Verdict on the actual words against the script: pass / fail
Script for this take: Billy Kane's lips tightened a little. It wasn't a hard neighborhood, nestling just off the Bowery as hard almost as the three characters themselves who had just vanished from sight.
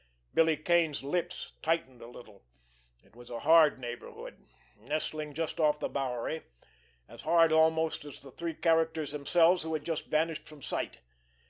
fail